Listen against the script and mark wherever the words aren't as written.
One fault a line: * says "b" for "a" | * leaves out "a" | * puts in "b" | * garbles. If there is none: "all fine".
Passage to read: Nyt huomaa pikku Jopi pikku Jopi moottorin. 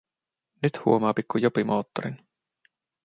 * leaves out "pikku Jopi"